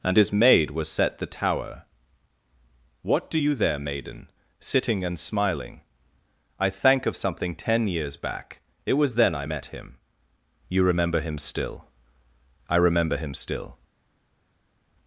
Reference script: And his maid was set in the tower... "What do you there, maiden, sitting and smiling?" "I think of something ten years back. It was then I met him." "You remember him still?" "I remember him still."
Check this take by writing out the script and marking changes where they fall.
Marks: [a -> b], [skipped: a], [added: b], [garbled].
And his maid was set [skipped: in] the tower... "What do you there, maiden, sitting and smiling?" "I [think -> thank] of something ten years back. It was then I met him." "You remember him still?" "I remember him still."